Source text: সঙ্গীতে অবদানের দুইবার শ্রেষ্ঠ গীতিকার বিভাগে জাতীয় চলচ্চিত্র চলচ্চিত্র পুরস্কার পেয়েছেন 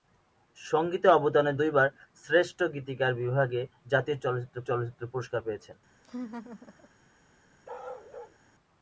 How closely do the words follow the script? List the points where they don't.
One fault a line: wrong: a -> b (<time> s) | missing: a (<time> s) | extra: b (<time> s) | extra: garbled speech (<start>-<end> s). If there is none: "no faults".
no faults